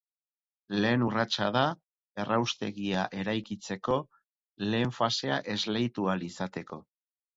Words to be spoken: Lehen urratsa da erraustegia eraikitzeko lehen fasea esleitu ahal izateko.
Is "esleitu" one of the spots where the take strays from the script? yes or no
no